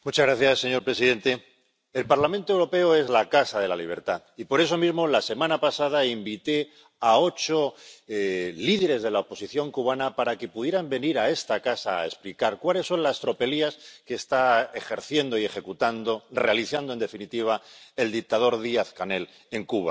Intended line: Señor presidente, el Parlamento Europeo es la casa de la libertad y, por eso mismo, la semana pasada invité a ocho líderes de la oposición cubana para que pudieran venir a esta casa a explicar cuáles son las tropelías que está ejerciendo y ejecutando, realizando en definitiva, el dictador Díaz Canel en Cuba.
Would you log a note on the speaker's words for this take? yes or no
no